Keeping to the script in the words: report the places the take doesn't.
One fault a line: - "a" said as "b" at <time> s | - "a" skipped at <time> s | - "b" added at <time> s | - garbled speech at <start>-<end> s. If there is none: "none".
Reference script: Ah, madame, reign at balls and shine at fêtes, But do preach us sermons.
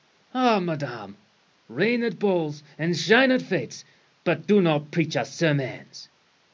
- "not" added at 4.6 s